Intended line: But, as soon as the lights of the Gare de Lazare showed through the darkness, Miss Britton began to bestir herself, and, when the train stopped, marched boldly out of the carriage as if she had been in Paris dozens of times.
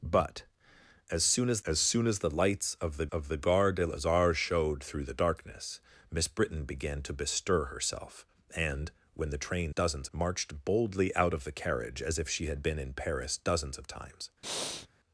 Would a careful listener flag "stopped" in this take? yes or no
yes